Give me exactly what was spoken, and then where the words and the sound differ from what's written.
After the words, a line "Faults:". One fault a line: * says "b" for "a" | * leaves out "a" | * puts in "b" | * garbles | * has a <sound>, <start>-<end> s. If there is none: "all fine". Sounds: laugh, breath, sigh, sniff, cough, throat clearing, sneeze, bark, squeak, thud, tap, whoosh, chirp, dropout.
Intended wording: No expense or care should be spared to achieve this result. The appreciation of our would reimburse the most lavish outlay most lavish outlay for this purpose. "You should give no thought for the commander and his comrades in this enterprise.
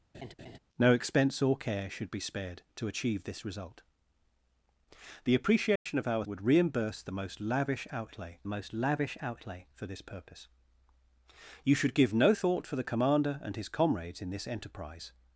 No expense or care should be spared to achieve this result. The appreciation of our would reimburse the most lavish outlay most lavish outlay for this purpose. "You should give no thought for the commander and his comrades in this enterprise.
Faults:
* has a laugh, 0.1-0.6 s
* has a dropout, 5.8-5.9 s